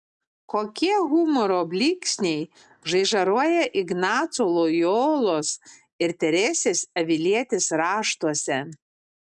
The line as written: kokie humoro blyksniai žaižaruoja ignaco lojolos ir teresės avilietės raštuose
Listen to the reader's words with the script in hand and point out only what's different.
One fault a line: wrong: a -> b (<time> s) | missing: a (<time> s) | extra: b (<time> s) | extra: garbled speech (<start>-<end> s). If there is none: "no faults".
no faults